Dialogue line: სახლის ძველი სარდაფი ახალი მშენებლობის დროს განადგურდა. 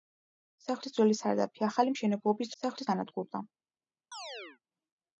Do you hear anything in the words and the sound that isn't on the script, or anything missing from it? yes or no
yes